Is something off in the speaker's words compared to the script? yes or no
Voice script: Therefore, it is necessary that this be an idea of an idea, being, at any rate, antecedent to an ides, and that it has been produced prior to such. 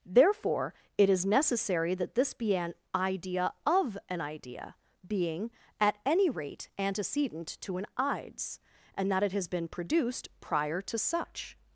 no